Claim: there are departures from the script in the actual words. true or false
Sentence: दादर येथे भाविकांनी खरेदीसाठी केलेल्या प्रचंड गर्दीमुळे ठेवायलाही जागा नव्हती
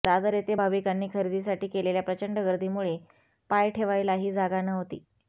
true